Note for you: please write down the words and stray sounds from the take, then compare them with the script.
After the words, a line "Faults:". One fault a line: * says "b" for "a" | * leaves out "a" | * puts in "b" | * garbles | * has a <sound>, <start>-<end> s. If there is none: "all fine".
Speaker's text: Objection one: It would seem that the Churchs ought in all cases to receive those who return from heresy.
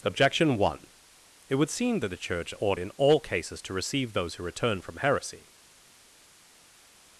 Objection one: It would seem that the Church ought in all cases to receive those who return from heresy.
Faults:
* says "Church" for "Churchs"